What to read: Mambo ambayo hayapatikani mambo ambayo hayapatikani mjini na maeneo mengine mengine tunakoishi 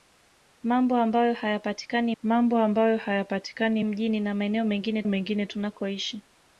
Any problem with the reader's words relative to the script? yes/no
no